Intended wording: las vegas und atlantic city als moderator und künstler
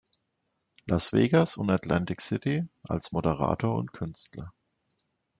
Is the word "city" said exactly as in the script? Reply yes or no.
yes